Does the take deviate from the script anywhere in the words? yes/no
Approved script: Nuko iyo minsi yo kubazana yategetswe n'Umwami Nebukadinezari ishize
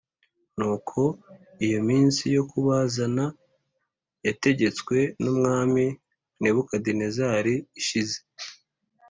no